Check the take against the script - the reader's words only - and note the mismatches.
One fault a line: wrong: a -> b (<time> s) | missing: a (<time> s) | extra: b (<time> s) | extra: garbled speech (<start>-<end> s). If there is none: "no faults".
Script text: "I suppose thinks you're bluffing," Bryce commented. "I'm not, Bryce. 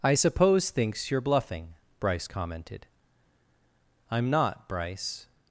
no faults